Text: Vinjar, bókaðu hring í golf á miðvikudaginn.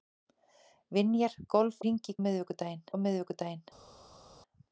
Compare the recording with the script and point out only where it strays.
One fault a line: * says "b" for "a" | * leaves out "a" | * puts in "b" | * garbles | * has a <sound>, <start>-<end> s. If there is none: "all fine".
* says "golf" for "bókaðu"
* says "miðvikudaginn" for "golf"